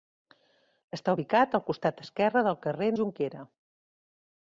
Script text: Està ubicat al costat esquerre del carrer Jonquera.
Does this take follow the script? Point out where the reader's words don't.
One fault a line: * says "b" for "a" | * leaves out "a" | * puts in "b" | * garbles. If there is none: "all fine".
all fine